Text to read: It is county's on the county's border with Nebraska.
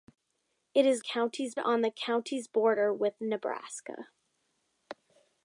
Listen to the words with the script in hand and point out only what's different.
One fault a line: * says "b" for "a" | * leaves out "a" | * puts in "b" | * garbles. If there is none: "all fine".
all fine